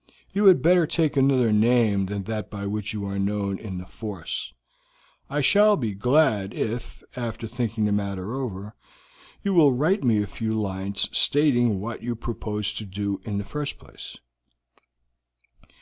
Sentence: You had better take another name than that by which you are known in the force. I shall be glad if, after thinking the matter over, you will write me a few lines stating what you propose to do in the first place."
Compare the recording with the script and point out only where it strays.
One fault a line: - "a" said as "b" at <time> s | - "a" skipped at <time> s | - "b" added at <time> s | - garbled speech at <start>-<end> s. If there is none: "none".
none